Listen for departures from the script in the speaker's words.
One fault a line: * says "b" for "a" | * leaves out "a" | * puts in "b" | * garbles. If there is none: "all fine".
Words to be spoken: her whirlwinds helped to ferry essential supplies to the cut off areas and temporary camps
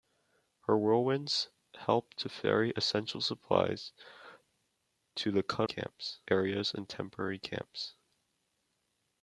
* says "camps" for "off"